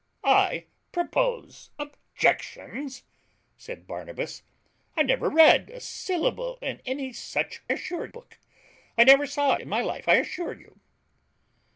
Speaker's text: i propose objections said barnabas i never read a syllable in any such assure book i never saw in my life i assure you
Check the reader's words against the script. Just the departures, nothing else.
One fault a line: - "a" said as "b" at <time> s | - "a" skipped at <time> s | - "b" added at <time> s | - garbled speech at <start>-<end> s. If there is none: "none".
none